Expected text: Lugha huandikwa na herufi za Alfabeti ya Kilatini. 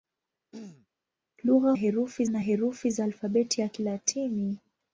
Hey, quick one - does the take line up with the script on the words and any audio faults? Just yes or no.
no